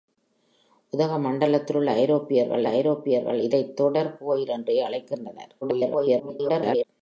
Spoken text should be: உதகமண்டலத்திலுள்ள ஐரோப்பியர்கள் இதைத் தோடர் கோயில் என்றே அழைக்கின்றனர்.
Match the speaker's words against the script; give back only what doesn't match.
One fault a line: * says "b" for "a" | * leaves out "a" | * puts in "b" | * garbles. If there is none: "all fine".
* puts in "ஐரோப்பியர்கள்"
* garbles